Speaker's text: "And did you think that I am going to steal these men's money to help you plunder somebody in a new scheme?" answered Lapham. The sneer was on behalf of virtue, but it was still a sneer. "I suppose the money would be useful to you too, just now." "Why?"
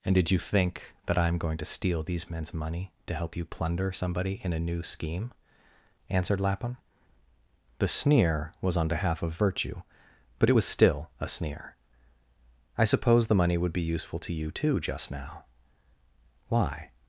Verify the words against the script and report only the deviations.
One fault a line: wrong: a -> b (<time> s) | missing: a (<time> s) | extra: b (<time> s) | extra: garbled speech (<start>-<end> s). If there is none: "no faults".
no faults